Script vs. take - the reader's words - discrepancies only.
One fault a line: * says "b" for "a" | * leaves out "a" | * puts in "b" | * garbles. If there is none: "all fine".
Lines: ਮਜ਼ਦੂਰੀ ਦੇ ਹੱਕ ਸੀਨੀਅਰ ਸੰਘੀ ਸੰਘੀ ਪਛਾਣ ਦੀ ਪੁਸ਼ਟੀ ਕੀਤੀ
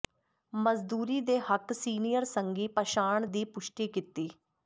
* leaves out "ਸੰਘੀ"